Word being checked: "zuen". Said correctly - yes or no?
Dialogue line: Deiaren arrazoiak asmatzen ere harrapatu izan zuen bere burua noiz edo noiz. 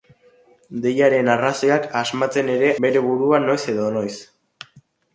no